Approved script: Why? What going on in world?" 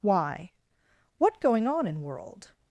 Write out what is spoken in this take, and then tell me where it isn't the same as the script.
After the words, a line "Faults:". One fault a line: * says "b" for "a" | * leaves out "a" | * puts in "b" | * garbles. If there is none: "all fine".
Why? What going on in world?"
Faults:
all fine